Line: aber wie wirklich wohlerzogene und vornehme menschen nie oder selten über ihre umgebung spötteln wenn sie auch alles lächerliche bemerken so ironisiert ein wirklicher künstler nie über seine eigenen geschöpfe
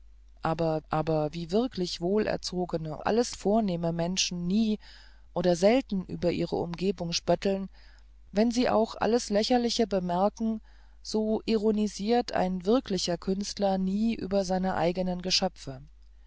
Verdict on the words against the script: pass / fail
fail